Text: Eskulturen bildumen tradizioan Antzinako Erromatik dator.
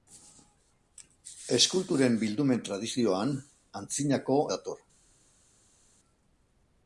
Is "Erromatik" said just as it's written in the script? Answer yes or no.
no